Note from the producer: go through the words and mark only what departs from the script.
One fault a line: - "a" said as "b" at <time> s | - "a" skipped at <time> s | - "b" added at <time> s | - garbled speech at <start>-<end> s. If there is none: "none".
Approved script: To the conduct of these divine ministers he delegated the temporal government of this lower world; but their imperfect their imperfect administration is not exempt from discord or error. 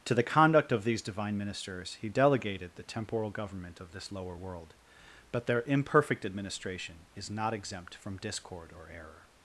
- "their imperfect" skipped at 6.3 s